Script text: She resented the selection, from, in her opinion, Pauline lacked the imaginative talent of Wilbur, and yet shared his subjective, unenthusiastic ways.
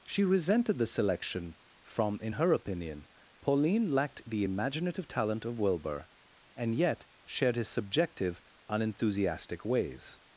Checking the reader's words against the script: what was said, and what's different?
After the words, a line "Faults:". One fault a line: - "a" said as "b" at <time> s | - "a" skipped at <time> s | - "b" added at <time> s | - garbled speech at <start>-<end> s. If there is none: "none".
She resented the selection, from, in her opinion, Pauline lacked the imaginative talent of Wilbur, and yet shared his subjective, unenthusiastic ways.
Faults:
none